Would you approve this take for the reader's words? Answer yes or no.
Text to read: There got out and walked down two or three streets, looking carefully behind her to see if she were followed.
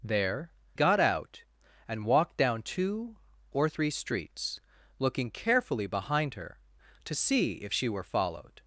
yes